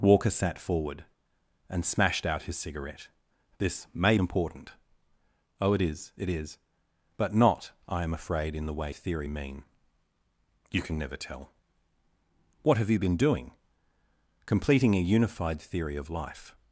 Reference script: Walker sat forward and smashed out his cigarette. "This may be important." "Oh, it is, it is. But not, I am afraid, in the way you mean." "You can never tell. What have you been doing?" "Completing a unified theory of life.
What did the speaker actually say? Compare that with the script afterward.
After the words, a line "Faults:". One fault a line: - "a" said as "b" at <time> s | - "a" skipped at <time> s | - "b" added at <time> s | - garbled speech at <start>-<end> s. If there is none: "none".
Walker sat forward and smashed out his cigarette. "This may important." "Oh, it is, it is. But not, I am afraid, in the way theory mean." "You can never tell. What have you been doing?" "Completing a unified theory of life.
Faults:
- "be" skipped at 4.2 s
- "you" said as "theory" at 8.9 s